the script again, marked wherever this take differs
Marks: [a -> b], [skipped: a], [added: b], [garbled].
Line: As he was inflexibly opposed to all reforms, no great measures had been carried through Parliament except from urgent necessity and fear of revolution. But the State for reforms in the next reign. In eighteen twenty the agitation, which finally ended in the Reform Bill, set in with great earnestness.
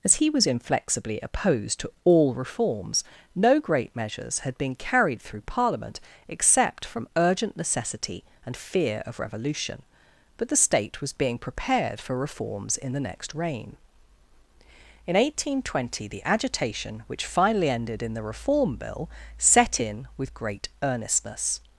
As he was inflexibly opposed to all reforms, no great measures had been carried through Parliament except from urgent necessity and fear of revolution. But the State [added: was being prepared] for reforms in the next reign. In eighteen twenty the agitation, which finally ended in the Reform Bill, set in with great earnestness.